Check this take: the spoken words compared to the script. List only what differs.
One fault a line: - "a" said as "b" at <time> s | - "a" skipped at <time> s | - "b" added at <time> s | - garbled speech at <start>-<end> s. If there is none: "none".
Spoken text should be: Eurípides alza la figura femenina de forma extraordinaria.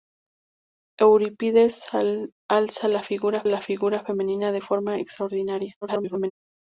- "la figura" added at 3.4 s
- garbled speech at 5.8-6.3 s